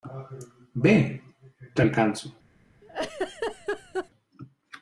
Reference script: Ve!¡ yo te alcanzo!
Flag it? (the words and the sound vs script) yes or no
yes